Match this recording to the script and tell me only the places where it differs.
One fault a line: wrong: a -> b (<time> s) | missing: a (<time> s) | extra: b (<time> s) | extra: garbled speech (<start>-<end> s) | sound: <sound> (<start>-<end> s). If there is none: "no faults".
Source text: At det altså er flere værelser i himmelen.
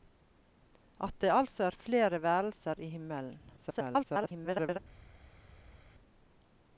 extra: garbled speech (3.6-4.8 s)